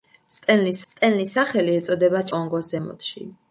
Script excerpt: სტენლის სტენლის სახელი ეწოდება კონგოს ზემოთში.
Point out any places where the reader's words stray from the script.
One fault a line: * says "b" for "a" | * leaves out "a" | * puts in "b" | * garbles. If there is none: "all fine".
all fine